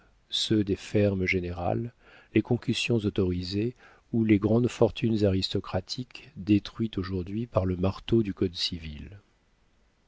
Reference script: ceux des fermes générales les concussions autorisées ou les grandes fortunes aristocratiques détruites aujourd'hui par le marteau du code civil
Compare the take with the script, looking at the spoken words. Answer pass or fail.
pass